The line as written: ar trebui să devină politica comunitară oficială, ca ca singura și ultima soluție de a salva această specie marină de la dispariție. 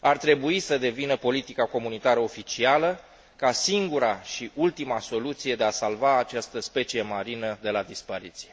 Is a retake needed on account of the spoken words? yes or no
yes